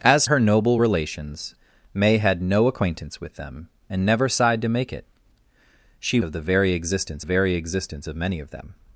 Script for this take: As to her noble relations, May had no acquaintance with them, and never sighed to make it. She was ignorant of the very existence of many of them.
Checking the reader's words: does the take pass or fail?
fail